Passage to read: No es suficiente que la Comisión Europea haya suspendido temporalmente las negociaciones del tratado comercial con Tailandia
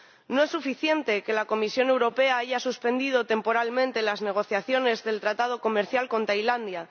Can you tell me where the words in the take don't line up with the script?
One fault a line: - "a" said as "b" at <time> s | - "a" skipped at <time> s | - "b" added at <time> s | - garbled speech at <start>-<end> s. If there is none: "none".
none